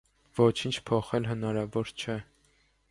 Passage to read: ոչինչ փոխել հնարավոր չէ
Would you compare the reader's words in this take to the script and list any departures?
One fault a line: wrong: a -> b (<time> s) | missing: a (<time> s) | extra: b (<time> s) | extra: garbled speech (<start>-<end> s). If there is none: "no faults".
no faults